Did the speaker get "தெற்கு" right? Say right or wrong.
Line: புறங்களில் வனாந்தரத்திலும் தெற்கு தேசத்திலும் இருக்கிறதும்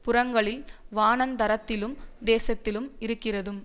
wrong